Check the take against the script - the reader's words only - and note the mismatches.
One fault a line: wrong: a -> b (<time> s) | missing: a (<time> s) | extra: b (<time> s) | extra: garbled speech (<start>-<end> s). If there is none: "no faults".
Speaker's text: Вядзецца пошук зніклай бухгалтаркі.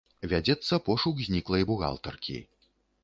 no faults